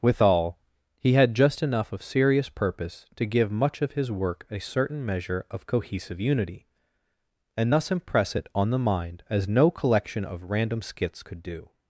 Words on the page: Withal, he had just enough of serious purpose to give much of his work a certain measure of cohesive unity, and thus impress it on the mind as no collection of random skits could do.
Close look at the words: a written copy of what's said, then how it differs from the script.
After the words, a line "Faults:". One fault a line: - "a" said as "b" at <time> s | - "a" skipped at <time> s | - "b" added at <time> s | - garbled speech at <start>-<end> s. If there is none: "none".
Withal, he had just enough of serious purpose to give much of his work a certain measure of cohesive unity, and thus impress it on the mind as no collection of random skits could do.
Faults:
none